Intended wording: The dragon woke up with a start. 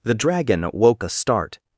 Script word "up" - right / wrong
wrong